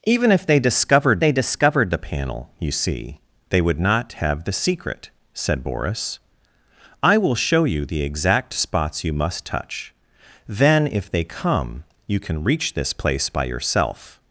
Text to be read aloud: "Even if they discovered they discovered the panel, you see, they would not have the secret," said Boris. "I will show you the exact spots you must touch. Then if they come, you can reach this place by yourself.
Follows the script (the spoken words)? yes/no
yes